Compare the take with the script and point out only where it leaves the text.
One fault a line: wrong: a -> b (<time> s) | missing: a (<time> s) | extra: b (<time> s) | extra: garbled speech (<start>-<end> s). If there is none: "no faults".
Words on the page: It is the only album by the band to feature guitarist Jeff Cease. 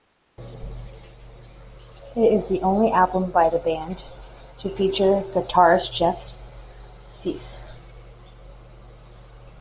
no faults